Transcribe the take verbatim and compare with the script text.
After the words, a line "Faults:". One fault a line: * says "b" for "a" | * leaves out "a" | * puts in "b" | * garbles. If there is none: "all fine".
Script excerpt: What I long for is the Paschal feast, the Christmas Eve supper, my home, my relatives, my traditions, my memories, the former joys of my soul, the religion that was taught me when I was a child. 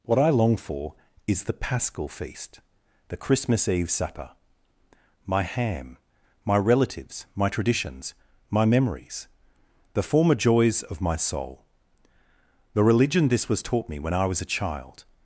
What I long for is the Paschal feast, the Christmas Eve supper, my ham, my relatives, my traditions, my memories, the former joys of my soul, the religion this was taught me when I was a child.
Faults:
* says "ham" for "home"
* says "this" for "that"